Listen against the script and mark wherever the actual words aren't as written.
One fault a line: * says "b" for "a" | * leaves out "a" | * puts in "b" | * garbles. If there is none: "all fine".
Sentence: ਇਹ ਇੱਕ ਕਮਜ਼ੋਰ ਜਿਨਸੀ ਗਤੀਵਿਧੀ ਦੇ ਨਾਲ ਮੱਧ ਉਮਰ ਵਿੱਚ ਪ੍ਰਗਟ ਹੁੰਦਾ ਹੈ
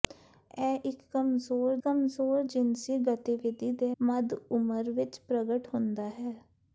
* puts in "ਕਮਜ਼ੋਰ"
* leaves out "ਨਾਲ"